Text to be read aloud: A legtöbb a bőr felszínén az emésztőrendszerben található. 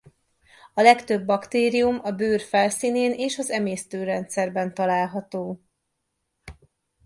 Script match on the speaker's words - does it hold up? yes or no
no